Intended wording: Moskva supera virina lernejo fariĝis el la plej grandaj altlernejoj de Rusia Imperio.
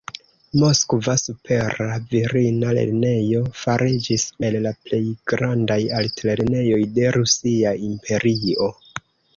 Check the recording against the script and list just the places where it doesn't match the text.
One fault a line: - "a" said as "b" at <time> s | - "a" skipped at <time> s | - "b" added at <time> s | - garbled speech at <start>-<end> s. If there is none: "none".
none